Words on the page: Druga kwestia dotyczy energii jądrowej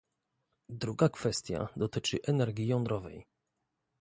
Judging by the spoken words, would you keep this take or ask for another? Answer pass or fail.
pass